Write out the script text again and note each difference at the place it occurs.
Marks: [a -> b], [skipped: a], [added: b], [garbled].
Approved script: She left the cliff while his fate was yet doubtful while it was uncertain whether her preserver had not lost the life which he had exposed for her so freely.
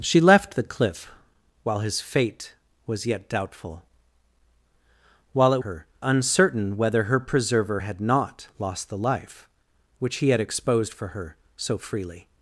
She left the cliff while his fate was yet doubtful while it [was -> her] uncertain whether her preserver had not lost the life which he had exposed for her so freely.